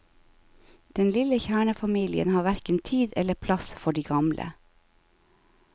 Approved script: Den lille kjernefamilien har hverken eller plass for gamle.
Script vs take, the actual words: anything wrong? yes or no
yes